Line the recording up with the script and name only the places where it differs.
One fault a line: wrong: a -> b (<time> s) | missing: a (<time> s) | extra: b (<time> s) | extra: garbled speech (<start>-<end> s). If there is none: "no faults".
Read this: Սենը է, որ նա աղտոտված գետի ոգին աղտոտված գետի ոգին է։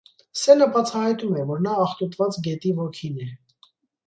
extra: բացահայտում (0.8 s)
missing: աղտոտված գետի ոգին (3.2 s)